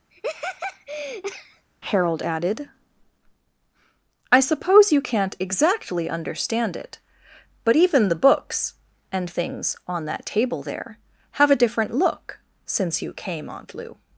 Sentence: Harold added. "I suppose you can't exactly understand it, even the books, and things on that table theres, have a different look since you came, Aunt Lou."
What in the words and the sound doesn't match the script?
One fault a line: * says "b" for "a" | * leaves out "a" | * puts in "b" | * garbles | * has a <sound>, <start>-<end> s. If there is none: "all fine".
* has a laugh, 0.1-1.7 s
* puts in "but"
* says "there" for "theres"